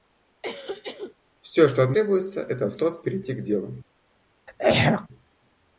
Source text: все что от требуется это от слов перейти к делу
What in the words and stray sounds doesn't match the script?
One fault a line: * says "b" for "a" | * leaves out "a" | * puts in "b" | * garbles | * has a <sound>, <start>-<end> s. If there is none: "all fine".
* has a cough, 0.4-1.1 s
* has a throat clearing, 4.5-5.1 s